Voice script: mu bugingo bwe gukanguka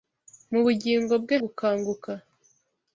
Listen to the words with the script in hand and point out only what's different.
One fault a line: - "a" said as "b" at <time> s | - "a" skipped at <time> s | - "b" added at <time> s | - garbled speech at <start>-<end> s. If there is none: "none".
none